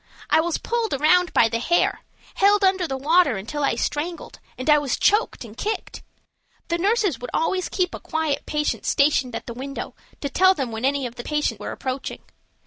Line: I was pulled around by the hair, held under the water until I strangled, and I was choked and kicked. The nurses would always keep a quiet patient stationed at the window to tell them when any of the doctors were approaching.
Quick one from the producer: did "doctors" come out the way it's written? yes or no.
no